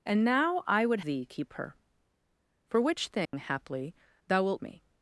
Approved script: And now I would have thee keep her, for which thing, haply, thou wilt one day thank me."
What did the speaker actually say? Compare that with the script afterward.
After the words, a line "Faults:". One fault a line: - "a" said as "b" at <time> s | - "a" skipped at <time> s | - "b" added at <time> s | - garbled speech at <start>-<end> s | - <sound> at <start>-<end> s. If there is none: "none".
And now I would thee keep her, for which thing, haply, thou wilt me."
Faults:
- "have" skipped at 1.0 s
- dropout at 3.3-3.3 s
- "one day thank" skipped at 4.6 s